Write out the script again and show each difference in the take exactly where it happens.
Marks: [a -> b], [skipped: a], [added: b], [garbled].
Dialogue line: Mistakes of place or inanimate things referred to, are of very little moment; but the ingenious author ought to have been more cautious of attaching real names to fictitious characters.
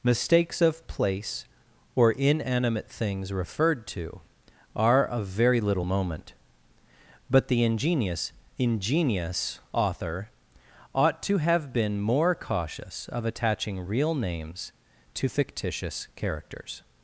Mistakes of place or inanimate things referred to, are of very little moment; but the ingenious [added: ingenious] author ought to have been more cautious of attaching real names to fictitious characters.